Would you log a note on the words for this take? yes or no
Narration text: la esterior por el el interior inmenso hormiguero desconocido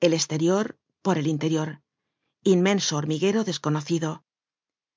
yes